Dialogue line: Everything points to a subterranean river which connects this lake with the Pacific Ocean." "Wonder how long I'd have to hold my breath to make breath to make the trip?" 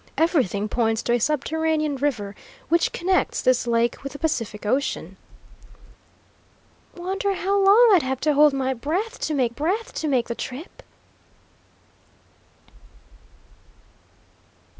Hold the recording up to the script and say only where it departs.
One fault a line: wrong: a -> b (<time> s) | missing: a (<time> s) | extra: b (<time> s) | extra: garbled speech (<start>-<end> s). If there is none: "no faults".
no faults